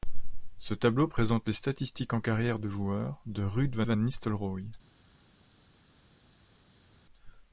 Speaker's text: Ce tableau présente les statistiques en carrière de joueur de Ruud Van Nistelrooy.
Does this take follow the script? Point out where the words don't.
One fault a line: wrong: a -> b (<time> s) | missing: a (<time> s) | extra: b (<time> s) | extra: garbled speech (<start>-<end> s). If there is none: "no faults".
extra: Van (3.9 s)